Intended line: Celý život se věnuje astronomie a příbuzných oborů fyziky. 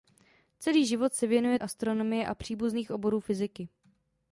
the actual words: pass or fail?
pass